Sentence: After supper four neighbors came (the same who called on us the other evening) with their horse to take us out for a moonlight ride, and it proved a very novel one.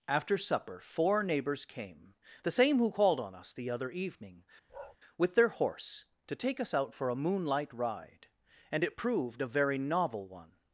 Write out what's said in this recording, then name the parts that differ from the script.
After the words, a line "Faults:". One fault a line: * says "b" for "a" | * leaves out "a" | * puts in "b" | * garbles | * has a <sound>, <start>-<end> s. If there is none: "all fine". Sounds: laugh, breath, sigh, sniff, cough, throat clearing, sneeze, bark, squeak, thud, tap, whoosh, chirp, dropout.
After supper four neighbors came (the same who called on us the other evening) with their horse to take us out for a moonlight ride, and it proved a very novel one.
Faults:
* has a bark, 4.7-5.0 s